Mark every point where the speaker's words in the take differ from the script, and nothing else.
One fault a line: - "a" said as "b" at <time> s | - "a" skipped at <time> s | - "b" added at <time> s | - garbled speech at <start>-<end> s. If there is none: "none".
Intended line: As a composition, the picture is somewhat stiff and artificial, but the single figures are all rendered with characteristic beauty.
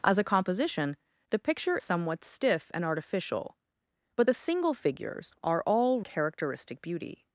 - "is" skipped at 1.8 s
- "rendered with" skipped at 6.0 s